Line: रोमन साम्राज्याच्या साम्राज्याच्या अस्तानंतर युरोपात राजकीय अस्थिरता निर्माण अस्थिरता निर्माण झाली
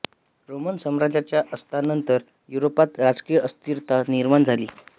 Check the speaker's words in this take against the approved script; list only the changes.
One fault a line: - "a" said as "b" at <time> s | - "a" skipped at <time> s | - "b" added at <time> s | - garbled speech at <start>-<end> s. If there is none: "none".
- "साम्राज्याच्या" skipped at 1.4 s
- "अस्थिरता निर्माण" skipped at 4.4 s